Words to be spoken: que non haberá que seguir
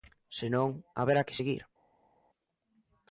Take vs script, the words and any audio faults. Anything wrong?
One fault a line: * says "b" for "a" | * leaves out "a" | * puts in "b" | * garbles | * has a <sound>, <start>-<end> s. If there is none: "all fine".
* says "se" for "que"